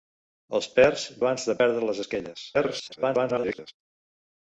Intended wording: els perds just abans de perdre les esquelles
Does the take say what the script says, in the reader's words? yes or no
no